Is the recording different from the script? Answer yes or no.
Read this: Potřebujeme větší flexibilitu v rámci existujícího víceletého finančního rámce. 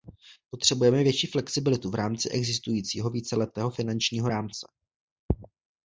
no